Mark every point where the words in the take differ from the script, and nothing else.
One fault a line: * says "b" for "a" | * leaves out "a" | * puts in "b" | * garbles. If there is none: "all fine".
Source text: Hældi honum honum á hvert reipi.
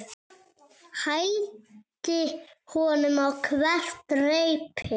* leaves out "honum"